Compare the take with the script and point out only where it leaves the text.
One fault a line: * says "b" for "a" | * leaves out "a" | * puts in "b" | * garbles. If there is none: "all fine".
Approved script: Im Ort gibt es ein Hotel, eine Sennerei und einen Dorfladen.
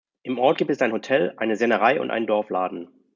all fine